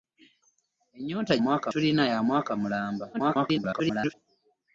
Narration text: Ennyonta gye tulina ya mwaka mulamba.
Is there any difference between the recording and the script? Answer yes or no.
yes